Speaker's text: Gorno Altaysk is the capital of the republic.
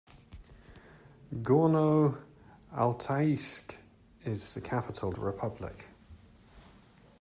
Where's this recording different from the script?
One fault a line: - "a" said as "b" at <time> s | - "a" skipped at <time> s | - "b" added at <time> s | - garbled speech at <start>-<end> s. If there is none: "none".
- "of" skipped at 5.2 s